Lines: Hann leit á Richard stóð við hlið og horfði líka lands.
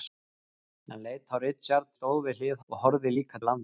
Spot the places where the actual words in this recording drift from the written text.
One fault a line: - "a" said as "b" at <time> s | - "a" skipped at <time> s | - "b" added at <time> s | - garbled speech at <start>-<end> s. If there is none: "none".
none